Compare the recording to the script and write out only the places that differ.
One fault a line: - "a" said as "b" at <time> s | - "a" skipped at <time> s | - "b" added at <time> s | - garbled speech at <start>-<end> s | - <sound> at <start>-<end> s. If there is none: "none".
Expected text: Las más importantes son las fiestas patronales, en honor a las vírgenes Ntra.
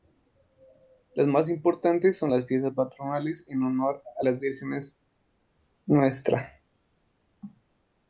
none